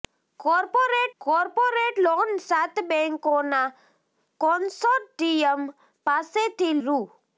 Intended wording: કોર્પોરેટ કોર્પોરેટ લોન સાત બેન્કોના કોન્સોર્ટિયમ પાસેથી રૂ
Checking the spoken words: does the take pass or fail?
pass